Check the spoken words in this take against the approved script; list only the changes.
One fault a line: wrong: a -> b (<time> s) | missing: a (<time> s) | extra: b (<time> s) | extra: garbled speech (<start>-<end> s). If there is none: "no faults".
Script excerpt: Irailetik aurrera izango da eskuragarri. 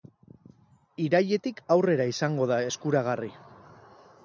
no faults